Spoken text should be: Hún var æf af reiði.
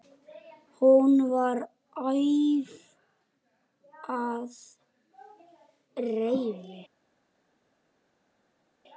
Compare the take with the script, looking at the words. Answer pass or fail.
pass